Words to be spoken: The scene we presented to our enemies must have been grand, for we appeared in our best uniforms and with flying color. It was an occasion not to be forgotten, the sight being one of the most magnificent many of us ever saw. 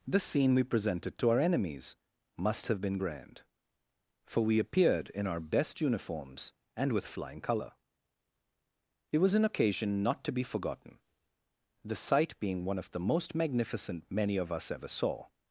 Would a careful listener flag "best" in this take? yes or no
no